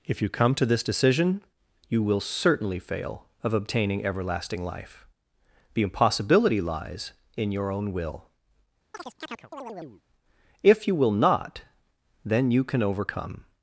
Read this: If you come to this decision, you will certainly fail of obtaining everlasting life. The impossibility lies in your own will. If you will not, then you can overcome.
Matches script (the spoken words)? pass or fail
pass